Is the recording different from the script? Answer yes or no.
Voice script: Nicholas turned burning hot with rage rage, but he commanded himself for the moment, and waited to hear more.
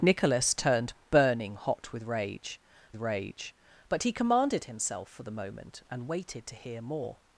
no